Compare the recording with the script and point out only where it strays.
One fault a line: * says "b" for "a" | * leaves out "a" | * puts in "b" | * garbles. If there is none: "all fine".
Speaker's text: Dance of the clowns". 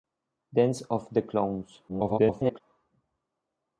* garbles